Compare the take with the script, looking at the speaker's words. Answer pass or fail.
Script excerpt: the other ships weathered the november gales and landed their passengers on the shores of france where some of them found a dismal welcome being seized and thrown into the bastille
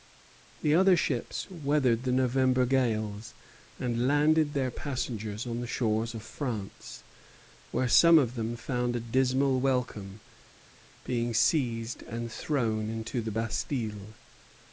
pass